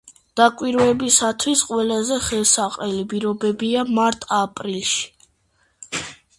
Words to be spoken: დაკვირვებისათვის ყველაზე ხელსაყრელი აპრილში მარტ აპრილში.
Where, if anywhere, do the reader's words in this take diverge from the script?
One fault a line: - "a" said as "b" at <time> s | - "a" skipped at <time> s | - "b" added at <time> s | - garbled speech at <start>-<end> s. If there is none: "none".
- "აპრილში" said as "პირობებია" at 3.1 s